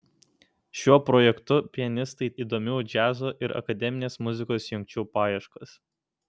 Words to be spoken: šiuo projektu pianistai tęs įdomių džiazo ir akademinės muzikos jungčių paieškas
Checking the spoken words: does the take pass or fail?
fail